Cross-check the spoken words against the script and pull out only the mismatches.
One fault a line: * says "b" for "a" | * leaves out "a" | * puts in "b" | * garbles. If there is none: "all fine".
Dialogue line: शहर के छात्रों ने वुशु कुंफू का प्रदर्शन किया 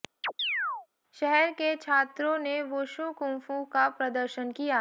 all fine